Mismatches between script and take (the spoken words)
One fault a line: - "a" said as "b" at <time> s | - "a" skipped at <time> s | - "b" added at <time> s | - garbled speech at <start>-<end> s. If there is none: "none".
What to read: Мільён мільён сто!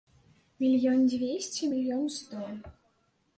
- "дзвесце" added at 1.1 s